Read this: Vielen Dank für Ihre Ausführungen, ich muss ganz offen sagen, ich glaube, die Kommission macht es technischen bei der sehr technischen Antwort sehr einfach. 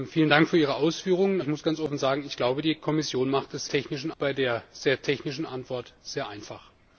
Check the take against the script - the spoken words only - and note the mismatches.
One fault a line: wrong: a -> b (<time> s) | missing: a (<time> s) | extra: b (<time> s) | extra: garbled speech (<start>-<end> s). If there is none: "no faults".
no faults